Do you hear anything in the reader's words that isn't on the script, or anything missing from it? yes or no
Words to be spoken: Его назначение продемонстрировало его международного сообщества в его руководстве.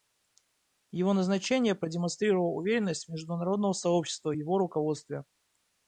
yes